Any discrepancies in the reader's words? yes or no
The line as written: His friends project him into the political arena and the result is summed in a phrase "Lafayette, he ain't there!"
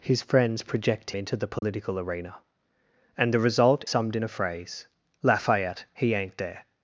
yes